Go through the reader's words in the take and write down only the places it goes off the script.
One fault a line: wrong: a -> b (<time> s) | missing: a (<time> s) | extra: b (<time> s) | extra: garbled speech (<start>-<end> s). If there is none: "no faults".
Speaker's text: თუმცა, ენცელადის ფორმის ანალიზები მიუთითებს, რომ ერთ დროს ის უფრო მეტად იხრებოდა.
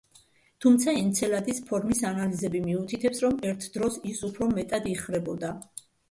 no faults